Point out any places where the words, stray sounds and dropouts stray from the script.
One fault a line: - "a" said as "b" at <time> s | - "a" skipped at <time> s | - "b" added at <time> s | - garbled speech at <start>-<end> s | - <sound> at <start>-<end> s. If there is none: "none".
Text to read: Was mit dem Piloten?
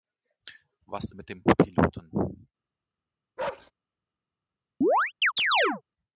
- bark at 3.4-3.7 s
- chirp at 4.8-5.8 s